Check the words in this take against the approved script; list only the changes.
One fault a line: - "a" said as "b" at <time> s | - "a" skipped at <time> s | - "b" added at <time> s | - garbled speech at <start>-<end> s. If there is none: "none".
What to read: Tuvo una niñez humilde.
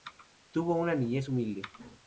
none